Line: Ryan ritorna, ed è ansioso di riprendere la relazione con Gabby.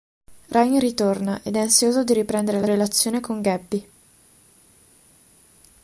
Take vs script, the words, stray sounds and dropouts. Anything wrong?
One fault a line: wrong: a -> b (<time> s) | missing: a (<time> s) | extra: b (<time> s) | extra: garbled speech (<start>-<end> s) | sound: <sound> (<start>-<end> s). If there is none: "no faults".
no faults